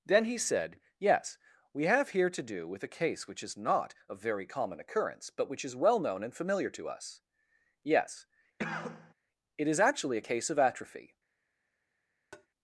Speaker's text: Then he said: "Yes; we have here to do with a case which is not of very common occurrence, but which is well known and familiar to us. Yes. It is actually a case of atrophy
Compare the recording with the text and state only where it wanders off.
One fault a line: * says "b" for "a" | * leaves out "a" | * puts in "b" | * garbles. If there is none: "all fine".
all fine